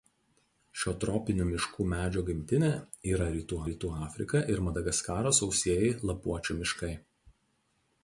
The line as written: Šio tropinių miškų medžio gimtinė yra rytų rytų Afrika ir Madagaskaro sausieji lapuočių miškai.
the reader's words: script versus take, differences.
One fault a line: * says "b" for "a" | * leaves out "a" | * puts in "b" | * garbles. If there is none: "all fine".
all fine